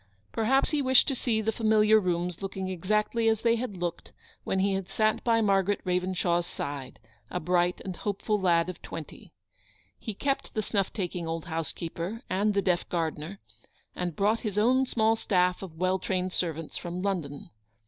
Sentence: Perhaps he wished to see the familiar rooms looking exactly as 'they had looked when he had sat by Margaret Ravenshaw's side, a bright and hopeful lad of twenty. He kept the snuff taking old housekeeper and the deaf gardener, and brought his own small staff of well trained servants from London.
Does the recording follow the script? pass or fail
pass